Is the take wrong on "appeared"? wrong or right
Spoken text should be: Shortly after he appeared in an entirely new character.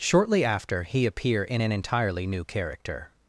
wrong